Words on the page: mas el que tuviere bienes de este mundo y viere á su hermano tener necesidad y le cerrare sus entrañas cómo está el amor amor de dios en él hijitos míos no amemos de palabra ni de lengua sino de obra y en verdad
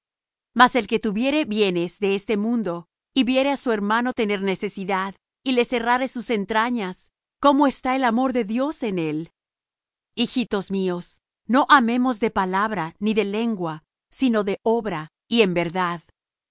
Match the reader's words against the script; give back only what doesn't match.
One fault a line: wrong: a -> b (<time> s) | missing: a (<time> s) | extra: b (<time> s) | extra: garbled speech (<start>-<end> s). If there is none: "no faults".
missing: amor (8.3 s)